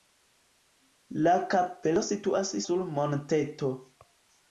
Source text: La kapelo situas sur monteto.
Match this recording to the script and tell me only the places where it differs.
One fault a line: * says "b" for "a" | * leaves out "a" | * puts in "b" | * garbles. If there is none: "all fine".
all fine